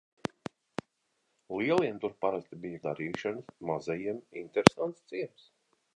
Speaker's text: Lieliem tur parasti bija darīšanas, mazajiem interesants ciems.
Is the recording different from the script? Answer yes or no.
no